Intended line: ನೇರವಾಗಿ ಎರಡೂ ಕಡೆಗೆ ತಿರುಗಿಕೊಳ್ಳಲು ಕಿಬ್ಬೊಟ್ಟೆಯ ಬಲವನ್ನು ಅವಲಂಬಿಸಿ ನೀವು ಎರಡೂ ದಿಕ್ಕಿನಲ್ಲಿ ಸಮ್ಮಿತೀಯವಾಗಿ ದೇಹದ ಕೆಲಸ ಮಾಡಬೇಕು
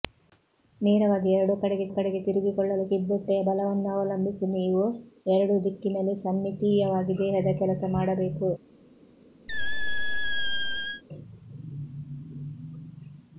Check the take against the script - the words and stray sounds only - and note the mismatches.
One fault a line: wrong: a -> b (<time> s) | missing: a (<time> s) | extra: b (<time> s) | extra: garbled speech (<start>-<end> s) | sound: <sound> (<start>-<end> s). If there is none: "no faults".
extra: ಕಡೆಗೆ (1.9 s)
sound: squeak (9.5-11.0 s)